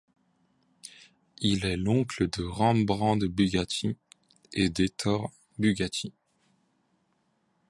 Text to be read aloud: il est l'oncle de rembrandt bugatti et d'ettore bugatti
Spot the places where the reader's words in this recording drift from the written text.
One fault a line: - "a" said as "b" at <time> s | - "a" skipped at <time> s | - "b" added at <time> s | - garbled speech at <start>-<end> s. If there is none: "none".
none